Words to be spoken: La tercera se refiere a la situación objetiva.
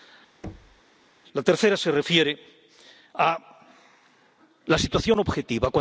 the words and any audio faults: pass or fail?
fail